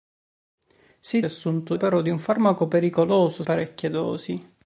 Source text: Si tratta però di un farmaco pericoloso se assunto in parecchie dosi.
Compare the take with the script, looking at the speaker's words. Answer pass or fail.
fail